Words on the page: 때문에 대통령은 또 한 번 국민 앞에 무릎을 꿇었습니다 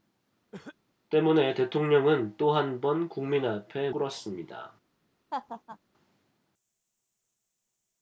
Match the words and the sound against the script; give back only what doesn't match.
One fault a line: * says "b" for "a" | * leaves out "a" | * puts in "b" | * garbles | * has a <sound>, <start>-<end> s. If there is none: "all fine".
* has a cough, 0.5-0.8 s
* leaves out "무릎을"
* has a laugh, 5.3-5.8 s